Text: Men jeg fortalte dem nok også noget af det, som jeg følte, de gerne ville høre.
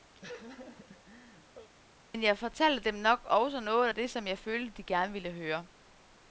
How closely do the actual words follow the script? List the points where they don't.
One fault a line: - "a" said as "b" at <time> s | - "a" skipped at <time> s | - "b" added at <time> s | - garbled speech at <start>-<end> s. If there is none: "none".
none